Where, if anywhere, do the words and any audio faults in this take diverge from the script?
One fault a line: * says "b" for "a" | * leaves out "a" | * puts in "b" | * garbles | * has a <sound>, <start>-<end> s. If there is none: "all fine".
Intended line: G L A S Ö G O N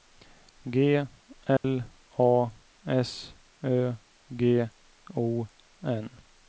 * has a dropout, 1.6-1.6 s